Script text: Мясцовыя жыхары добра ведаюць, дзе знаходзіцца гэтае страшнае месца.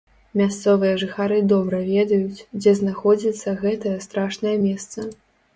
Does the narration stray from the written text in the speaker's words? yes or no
no